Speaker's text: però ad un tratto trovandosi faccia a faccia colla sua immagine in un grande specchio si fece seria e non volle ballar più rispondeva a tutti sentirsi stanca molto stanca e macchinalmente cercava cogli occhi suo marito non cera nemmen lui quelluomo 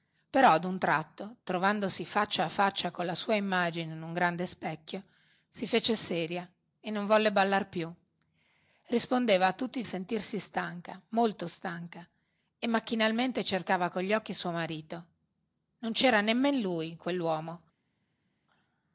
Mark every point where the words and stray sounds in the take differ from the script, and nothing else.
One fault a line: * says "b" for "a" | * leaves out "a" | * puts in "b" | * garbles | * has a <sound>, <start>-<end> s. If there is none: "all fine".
all fine